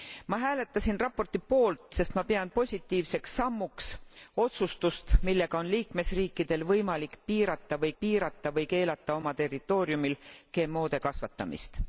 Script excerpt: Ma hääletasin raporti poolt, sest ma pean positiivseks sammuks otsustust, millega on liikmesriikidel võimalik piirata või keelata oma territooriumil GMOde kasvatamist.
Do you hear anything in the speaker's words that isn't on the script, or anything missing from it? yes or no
yes